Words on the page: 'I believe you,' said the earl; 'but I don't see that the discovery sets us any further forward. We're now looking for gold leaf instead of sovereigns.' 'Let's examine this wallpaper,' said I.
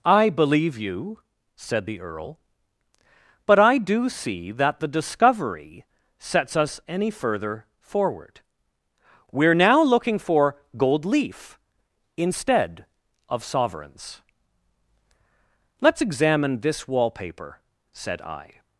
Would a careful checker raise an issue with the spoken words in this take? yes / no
yes